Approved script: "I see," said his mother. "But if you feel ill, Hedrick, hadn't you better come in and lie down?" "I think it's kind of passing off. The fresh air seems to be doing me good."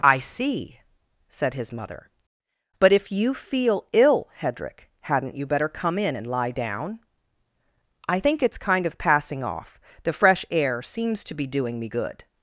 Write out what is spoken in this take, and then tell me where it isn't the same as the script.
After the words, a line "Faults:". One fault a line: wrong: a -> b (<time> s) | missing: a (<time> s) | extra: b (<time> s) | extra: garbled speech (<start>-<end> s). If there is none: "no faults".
"I see," said his mother. "But if you feel ill, Hedrick, hadn't you better come in and lie down?" "I think it's kind of passing off. The fresh air seems to be doing me good."
Faults:
no faults